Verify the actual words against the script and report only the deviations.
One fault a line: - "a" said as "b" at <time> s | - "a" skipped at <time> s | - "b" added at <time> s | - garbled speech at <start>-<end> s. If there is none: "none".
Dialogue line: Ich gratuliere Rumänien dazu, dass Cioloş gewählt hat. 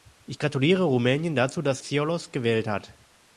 none